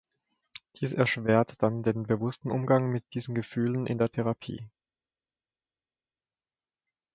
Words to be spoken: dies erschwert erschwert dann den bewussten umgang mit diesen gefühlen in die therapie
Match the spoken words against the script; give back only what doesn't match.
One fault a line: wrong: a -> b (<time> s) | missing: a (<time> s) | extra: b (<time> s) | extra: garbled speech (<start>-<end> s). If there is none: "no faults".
missing: erschwert (1.6 s)
wrong: die -> der (4.0 s)